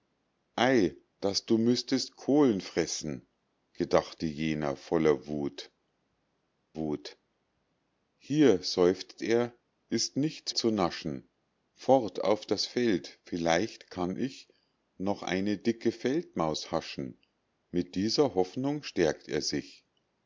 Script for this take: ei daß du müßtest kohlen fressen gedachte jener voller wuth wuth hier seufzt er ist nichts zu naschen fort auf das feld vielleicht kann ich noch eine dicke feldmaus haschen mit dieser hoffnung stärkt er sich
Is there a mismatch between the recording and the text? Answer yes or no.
no